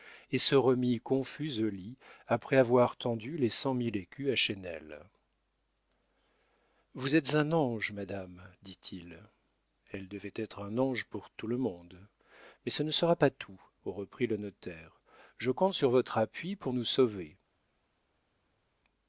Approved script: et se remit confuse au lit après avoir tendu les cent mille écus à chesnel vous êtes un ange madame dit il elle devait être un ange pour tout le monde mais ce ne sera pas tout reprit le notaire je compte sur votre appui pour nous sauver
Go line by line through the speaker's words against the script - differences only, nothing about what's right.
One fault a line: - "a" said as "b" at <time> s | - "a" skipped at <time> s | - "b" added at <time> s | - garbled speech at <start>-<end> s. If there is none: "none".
none